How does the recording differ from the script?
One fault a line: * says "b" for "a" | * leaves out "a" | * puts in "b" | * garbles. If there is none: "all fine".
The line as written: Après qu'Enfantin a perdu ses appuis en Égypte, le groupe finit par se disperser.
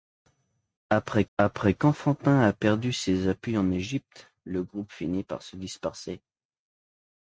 * puts in "après"